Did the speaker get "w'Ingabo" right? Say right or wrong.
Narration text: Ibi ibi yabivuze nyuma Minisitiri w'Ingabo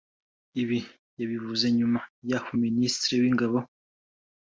right